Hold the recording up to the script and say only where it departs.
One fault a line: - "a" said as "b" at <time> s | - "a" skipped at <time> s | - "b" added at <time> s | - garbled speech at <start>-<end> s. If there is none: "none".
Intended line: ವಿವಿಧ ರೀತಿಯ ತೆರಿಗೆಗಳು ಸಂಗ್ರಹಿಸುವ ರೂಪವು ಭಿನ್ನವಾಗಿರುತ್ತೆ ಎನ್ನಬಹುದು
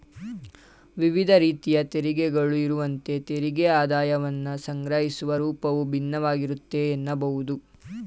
- "ಇರುವಂತೆ ತೆರಿಗೆ ಆದಾಯವನ್ನ" added at 2.6 s